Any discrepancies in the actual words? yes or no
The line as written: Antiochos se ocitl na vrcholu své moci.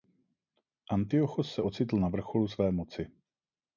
no